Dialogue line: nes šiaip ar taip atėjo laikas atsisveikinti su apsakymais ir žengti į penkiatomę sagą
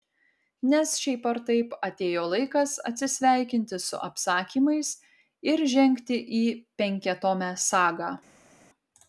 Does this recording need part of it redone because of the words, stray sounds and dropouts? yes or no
no